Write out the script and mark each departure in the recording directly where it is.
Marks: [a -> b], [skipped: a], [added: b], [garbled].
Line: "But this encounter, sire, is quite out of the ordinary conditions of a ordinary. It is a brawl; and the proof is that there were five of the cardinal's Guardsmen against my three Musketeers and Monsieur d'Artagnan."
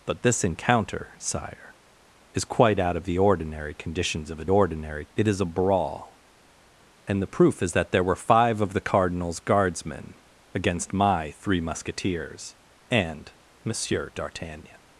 "But this encounter, sire, is quite out of the ordinary conditions of a ordinary. It is a brawl; and the proof is that there were five of the cardinal's Guardsmen against my three Musketeers and Monsieur d'Artagnan."